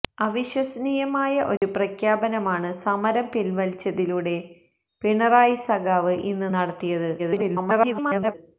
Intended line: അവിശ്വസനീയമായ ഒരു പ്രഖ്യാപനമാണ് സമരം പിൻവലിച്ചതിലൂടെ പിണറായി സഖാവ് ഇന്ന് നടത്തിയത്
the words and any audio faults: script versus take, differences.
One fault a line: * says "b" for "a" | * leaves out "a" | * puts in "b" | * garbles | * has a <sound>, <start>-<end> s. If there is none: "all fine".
* has a dropout, 1.6-1.6 s
* garbles